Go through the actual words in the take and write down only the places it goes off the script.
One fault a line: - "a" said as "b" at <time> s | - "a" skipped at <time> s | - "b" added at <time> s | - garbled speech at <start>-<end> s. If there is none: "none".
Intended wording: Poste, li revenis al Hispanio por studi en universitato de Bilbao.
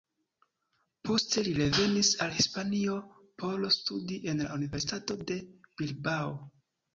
- "la" added at 4.5 s